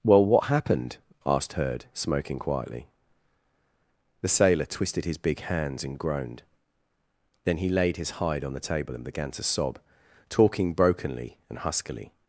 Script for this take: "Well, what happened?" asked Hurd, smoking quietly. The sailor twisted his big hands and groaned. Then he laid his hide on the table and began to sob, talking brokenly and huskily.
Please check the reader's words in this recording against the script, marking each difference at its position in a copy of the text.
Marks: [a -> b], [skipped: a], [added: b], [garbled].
"Well, what happened?" asked Hurd, smoking quietly. The sailor twisted his big hands and groaned. Then he laid his hide on the table and began to sob, talking brokenly and huskily.